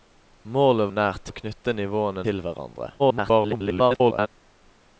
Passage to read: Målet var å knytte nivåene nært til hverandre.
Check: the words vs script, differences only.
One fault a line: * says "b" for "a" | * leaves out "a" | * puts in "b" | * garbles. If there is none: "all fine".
* says "nært" for "var"
* leaves out "nært"
* garbles